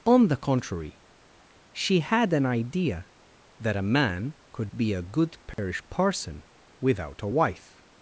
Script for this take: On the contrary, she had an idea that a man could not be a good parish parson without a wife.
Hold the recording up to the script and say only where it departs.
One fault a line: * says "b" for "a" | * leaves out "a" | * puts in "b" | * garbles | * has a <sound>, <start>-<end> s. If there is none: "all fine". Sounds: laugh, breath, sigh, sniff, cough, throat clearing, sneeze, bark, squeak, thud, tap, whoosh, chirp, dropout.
* leaves out "not"
* has a dropout, 5.5-5.6 s